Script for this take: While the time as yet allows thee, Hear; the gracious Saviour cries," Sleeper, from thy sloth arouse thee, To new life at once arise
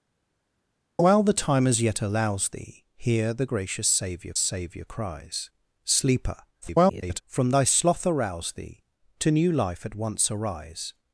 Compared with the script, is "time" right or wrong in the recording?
right